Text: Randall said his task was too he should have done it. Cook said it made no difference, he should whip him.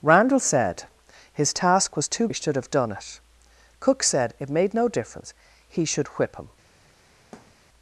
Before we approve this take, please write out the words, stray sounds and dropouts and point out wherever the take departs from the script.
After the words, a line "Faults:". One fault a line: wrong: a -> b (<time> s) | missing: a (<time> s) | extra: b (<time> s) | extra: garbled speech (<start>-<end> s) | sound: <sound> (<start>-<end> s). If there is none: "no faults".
Randall said his task was too he should have done it. Cook said it made no difference, he should whip him.
Faults:
sound: thud (7.3-7.6 s)